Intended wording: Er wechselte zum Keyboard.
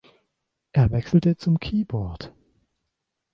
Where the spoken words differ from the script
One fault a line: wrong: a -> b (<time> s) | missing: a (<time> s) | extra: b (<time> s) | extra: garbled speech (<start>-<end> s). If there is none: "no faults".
no faults